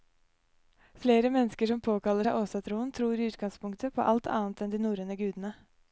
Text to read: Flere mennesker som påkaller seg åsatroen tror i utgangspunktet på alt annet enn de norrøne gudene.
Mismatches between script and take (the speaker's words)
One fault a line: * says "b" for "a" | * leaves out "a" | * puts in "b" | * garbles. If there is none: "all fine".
all fine